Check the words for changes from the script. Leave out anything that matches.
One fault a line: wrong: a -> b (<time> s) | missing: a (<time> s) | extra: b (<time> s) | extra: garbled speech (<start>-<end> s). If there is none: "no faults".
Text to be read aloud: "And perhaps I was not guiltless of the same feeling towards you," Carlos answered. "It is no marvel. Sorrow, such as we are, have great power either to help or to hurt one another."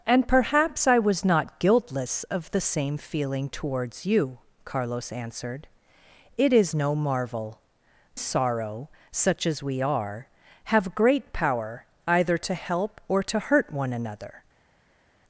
no faults